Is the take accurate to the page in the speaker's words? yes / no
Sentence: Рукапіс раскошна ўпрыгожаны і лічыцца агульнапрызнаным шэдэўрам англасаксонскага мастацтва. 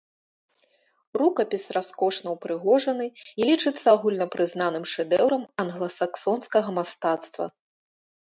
yes